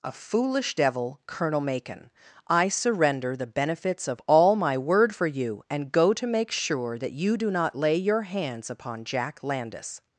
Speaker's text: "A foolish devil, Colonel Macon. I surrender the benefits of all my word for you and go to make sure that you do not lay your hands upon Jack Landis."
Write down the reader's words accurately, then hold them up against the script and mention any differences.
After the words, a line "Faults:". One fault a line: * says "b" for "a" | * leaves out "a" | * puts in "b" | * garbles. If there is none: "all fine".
"A foolish devil, Colonel Macon. I surrender the benefits of all my word for you and go to make sure that you do not lay your hands upon Jack Landis."
Faults:
all fine